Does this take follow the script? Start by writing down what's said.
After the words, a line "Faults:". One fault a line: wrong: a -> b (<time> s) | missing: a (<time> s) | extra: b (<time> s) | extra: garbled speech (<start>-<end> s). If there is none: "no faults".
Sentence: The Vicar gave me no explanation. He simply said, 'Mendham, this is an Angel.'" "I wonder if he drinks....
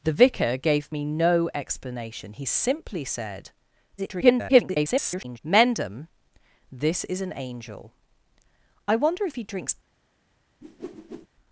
The Vicar gave me no explanation. He simply said, [garbled] 'Mendham, this is an Angel.'" "I wonder if he drinks....
Faults:
extra: garbled speech (4.0-5.4 s)